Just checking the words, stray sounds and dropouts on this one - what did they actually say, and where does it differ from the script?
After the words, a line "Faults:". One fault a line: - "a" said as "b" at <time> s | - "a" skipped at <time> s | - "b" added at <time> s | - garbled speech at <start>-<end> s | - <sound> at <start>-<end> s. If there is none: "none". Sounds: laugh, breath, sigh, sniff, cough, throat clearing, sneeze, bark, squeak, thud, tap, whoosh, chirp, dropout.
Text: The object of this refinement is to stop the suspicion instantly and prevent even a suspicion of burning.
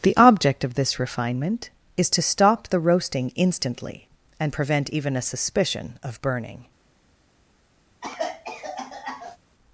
The object of this refinement is to stop the roasting instantly and prevent even a suspicion of burning.
Faults:
- "suspicion" said as "roasting" at 2.8 s
- cough at 8.0-9.4 s